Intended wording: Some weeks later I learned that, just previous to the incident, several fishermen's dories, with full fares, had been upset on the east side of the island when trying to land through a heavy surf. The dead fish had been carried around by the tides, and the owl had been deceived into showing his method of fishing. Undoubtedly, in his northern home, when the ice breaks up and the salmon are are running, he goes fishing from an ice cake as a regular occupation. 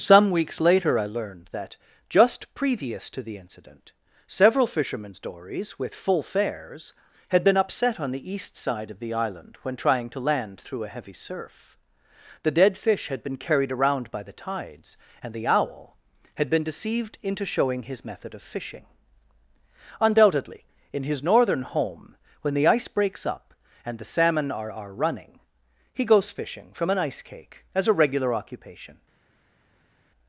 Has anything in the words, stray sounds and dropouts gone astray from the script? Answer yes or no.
no